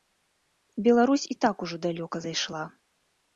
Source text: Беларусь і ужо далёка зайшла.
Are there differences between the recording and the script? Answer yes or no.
yes